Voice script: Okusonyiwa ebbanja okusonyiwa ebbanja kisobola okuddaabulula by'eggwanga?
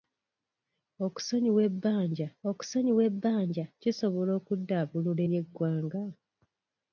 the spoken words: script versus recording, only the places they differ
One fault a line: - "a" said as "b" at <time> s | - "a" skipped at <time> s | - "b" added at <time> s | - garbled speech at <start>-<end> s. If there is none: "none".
none